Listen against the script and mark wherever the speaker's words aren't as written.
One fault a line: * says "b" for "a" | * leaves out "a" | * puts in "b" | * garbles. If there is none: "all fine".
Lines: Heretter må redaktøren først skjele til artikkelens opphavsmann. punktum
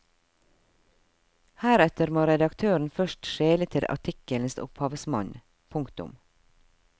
all fine